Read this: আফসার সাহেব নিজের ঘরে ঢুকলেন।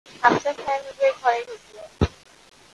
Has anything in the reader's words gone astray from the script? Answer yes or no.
no